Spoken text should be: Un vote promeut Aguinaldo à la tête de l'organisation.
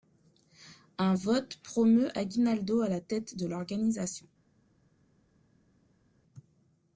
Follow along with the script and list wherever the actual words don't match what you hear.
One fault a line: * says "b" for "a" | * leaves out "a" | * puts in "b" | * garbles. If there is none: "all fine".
all fine